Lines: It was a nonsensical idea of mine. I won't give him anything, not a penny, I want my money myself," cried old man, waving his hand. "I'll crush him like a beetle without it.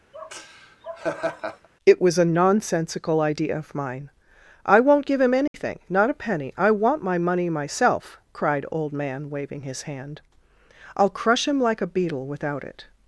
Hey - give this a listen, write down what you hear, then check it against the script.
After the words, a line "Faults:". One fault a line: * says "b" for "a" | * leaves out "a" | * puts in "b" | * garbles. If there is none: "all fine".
It was a nonsensical idea of mine. I won't give him anything, not a penny, I want my money myself," cried old man, waving his hand. "I'll crush him like a beetle without it.
Faults:
all fine